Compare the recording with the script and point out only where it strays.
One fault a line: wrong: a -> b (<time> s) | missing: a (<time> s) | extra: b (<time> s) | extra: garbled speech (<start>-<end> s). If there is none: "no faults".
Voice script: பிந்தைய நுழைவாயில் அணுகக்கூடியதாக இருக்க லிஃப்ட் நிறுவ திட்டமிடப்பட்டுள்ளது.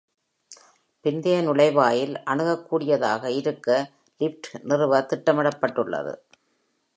no faults